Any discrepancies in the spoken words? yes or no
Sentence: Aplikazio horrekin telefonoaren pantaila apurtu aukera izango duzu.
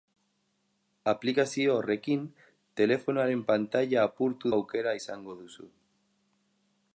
no